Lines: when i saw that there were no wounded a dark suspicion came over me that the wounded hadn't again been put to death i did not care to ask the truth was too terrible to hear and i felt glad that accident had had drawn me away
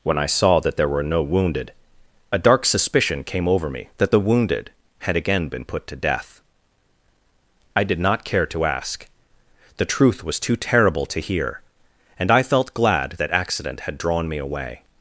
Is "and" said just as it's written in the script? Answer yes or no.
yes